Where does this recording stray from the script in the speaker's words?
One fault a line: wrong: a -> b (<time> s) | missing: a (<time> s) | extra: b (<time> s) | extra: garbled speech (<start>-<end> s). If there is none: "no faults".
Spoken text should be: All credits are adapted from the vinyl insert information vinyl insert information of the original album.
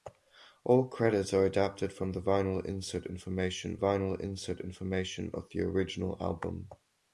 no faults